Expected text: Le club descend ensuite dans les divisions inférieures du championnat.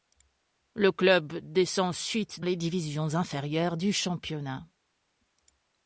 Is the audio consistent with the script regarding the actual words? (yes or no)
no